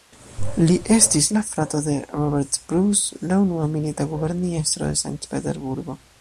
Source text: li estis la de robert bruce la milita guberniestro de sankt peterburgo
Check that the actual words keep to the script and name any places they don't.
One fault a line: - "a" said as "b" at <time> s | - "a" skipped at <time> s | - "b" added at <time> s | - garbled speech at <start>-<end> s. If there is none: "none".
- "frato" added at 1.5 s
- "unua" added at 3.5 s